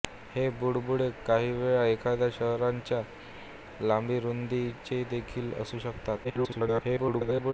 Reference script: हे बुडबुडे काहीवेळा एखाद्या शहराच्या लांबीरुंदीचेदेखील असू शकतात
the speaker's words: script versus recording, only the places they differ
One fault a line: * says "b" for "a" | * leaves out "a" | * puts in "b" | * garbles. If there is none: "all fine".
* garbles